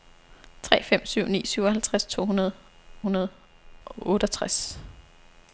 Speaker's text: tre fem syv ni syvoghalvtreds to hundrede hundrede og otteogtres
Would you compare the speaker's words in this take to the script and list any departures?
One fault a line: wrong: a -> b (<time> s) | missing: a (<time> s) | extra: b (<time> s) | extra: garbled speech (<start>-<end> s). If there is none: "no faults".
no faults